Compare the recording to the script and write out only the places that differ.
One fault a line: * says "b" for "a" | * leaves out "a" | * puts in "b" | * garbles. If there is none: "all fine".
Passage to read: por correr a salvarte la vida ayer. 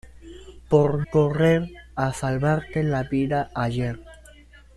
all fine